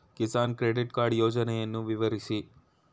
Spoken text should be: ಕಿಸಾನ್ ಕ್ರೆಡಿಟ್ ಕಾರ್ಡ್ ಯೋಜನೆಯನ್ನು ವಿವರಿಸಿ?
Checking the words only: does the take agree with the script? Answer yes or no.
yes